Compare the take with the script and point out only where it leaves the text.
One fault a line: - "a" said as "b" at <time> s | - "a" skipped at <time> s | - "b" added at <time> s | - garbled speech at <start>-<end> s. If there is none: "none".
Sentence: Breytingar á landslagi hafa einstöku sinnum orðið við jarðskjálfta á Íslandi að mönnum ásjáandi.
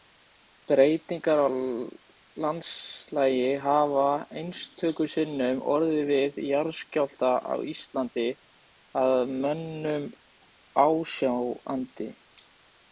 none